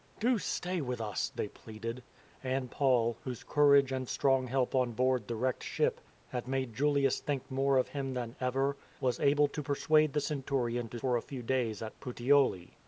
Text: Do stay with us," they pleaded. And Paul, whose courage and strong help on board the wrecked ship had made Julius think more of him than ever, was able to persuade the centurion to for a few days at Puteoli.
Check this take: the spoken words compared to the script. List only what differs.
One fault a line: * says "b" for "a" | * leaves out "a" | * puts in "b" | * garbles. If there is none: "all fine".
all fine